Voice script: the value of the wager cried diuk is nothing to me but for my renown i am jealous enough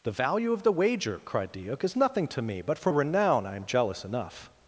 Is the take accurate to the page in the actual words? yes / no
no